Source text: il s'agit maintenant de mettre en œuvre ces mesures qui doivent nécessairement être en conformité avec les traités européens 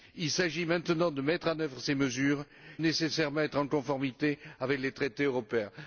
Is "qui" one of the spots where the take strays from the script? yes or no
yes